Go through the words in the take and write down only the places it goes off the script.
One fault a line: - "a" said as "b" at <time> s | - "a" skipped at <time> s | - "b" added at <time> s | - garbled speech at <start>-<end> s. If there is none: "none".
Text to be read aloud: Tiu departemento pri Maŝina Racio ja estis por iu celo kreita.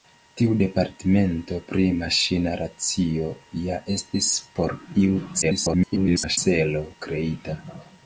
- garbled speech at 5.4-6.4 s